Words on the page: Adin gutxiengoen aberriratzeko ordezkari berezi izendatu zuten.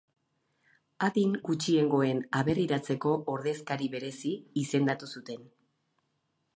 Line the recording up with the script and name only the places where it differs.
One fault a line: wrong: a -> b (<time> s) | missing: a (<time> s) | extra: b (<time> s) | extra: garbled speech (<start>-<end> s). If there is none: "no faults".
no faults